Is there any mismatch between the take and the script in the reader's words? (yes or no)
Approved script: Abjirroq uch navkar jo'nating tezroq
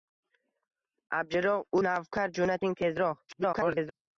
yes